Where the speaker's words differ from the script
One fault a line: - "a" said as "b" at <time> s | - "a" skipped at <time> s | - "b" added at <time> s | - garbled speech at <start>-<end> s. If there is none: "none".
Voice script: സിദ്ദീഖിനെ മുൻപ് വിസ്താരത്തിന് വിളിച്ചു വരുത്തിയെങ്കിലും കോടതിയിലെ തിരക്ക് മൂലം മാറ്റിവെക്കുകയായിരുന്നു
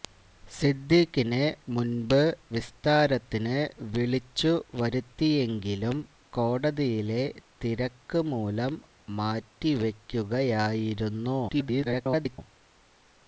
- garbled speech at 11.5-12.4 s